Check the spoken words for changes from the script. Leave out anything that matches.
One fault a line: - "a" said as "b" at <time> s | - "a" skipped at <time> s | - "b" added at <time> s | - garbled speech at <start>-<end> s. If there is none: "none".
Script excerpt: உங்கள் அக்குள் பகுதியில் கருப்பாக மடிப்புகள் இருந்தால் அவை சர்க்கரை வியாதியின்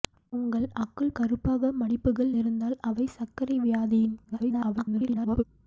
- "பகுதியில்" skipped at 1.1 s
- garbled speech at 4.2-5.4 s